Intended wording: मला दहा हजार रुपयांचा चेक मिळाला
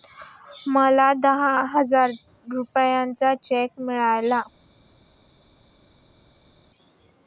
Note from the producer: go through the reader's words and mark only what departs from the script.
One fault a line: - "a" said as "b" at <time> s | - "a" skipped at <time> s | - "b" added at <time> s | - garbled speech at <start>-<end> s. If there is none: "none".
none